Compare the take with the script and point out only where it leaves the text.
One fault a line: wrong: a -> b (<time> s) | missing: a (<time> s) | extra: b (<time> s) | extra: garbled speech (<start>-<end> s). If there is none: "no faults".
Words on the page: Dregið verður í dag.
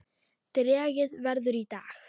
no faults